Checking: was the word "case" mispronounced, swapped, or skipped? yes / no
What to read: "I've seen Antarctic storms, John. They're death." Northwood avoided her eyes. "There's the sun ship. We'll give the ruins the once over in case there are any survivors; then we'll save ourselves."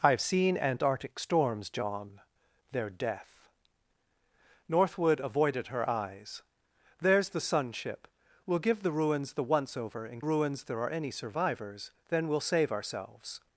yes